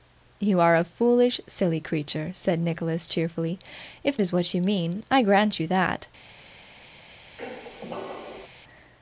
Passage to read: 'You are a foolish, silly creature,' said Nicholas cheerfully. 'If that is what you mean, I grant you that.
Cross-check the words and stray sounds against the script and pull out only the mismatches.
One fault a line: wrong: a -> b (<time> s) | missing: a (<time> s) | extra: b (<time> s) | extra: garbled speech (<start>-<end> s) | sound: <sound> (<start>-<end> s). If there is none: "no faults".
missing: that (4.2 s)
sound: squeak (7.4-8.5 s)